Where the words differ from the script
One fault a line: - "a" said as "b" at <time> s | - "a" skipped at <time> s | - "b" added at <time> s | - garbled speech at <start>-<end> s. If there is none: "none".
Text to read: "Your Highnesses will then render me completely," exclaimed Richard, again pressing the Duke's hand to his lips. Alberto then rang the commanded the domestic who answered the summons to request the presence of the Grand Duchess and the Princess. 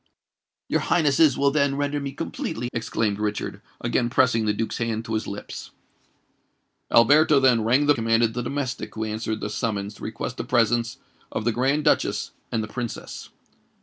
none